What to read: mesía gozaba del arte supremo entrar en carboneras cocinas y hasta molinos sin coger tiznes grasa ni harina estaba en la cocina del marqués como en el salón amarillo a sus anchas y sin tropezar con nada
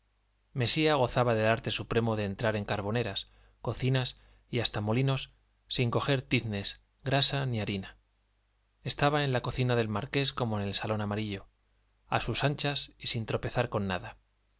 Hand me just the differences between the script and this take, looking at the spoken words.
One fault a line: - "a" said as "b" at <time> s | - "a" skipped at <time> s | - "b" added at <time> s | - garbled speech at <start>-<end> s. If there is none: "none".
- "de" added at 2.1 s